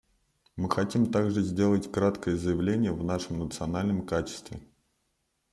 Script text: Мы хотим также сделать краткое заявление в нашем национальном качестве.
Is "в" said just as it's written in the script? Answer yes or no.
yes